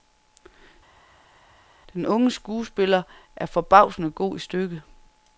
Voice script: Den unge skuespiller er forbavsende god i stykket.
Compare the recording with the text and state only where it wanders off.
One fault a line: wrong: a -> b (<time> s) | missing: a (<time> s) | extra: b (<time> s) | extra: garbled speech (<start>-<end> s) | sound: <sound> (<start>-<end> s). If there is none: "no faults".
no faults